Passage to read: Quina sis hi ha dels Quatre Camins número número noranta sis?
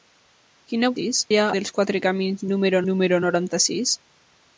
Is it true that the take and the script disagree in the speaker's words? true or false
false